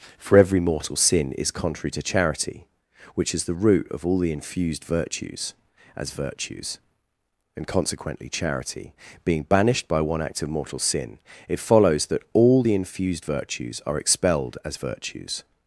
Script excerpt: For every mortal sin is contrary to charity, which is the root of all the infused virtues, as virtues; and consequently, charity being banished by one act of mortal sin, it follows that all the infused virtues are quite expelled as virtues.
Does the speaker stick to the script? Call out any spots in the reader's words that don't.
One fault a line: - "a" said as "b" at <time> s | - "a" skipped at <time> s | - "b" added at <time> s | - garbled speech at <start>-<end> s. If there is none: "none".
- "quite" skipped at 14.0 s